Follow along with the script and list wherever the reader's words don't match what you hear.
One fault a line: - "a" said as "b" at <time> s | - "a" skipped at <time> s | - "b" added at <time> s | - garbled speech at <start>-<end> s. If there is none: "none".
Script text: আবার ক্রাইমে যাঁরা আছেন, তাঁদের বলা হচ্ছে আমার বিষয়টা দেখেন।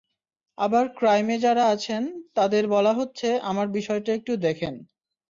- "একটু" added at 4.1 s